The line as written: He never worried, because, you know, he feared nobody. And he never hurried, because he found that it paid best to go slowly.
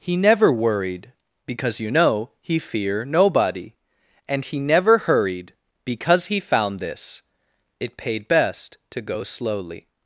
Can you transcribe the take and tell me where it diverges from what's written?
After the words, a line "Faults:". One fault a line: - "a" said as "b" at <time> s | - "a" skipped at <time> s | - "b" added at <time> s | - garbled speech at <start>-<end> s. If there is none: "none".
He never worried, because, you know, he fear nobody. And he never hurried, because he found this it paid best to go slowly.
Faults:
- "feared" said as "fear" at 2.6 s
- "that" said as "this" at 6.8 s